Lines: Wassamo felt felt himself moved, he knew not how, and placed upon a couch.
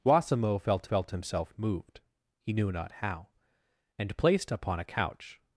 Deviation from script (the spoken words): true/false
false